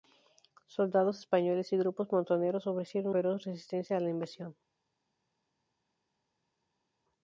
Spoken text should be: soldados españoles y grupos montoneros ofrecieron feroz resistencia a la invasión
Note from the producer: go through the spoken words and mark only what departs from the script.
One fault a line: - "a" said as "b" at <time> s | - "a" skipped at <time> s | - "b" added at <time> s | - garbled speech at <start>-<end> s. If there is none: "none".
none